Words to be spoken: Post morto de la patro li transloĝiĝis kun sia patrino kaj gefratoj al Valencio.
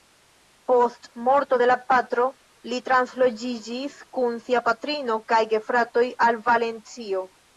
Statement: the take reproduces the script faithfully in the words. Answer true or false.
true